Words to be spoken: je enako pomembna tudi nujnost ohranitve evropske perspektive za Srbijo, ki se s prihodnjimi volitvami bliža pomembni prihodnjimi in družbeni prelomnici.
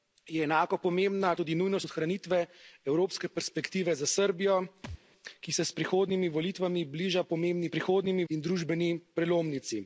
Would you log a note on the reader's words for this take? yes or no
no